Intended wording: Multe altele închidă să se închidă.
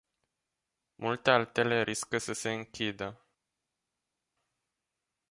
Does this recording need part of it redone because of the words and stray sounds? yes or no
yes